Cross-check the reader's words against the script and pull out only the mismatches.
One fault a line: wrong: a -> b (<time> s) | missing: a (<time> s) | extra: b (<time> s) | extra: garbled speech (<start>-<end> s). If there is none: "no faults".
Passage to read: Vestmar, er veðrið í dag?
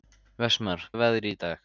no faults